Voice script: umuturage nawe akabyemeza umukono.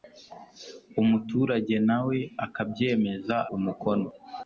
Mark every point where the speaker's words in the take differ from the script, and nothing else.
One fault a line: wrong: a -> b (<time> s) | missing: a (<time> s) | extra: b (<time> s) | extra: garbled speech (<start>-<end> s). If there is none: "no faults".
no faults